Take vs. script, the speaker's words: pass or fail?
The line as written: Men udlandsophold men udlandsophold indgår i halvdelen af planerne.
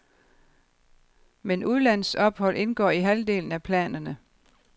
fail